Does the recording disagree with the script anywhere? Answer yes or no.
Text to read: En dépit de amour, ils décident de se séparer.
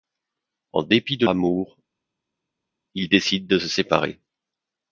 no